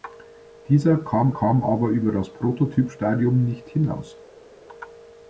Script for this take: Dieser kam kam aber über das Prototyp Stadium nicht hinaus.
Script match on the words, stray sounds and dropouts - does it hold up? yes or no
yes